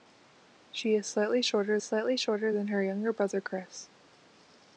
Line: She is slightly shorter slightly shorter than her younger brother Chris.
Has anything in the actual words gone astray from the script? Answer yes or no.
no